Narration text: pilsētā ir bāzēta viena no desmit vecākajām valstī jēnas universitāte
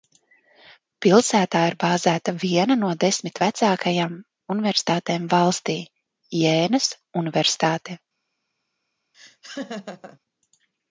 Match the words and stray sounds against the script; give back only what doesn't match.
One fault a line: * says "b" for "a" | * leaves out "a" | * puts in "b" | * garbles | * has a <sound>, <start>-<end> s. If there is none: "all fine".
* puts in "universitātēm"
* has a laugh, 9.1-10.2 s